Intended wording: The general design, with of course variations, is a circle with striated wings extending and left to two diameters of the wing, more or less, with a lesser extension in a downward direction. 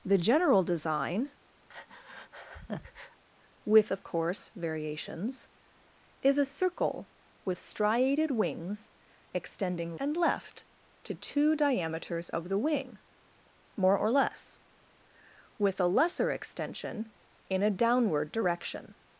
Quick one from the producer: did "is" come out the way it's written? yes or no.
yes